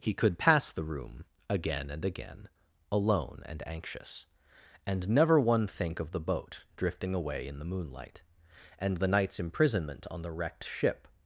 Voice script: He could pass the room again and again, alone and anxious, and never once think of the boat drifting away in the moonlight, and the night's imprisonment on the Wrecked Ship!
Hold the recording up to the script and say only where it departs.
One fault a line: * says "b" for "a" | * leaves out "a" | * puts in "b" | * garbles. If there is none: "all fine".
* says "one" for "once"